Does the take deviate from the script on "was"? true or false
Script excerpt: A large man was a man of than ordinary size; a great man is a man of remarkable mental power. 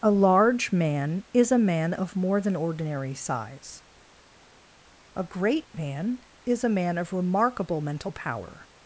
true